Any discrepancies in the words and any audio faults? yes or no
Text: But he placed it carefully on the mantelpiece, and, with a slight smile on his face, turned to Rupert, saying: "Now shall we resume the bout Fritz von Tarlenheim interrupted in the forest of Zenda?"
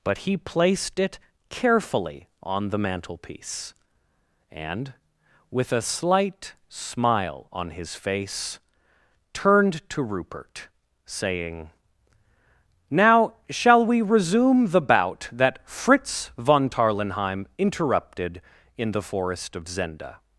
yes